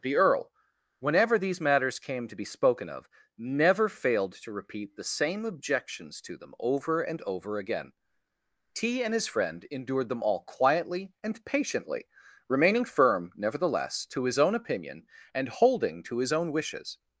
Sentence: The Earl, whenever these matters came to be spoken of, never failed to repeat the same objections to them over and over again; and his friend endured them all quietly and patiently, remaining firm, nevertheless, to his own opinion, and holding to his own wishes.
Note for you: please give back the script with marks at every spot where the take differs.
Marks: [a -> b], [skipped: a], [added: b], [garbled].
The Earl, whenever these matters came to be spoken of, never failed to repeat the same objections to them over and over again; [added: t] and his friend endured them all quietly and patiently, remaining firm, nevertheless, to his own opinion, and holding to his own wishes.